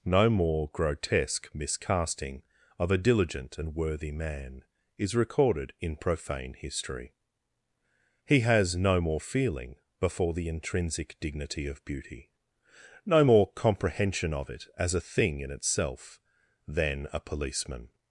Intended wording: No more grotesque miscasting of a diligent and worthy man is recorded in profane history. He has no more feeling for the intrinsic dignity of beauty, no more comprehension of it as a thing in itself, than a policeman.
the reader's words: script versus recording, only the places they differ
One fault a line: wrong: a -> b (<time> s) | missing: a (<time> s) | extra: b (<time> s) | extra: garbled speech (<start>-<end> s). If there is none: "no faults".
wrong: for -> before (10.0 s)